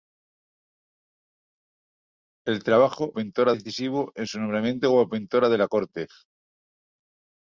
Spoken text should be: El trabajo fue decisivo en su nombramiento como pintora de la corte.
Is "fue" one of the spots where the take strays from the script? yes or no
yes